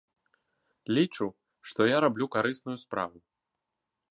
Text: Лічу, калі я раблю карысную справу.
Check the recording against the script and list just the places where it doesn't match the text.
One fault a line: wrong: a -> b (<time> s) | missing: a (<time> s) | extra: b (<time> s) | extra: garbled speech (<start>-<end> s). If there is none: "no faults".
wrong: калі -> што (1.7 s)